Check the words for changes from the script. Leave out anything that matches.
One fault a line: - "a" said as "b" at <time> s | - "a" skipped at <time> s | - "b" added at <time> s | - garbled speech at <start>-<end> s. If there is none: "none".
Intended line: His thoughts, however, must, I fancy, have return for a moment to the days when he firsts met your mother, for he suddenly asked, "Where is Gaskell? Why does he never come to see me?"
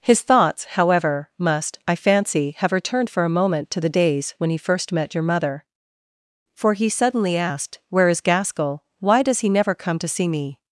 - "return" said as "returned" at 2.7 s
- "firsts" said as "first" at 4.6 s